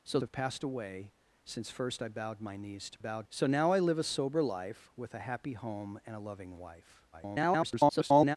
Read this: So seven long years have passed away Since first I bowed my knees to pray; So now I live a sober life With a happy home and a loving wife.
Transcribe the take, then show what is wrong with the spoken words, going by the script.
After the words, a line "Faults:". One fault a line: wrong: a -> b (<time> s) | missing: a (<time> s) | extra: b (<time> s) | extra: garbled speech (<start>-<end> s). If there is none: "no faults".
So have passed away Since first I bowed my knees to bowed; So now I live a sober life With a happy home and a loving wife. [garbled]
Faults:
missing: seven long years (0.2 s)
wrong: pray -> bowed (3.0 s)
extra: garbled speech (7.1-8.4 s)